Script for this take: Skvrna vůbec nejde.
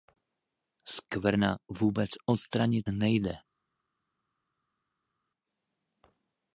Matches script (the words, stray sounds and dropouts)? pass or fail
fail